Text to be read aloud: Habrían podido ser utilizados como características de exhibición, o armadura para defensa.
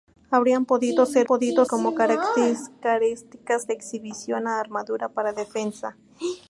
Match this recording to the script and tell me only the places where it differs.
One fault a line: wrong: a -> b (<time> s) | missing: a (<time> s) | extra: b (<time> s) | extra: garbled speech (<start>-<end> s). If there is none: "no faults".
wrong: utilizados -> podido (1.2 s)